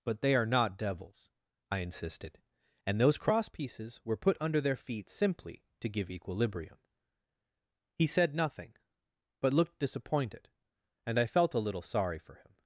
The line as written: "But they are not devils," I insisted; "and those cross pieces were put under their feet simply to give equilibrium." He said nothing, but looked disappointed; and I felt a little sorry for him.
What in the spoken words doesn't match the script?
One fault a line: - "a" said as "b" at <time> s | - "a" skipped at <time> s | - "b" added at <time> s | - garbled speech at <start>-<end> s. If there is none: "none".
none